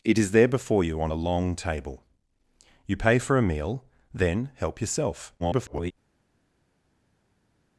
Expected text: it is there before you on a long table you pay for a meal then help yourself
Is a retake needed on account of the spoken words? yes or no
yes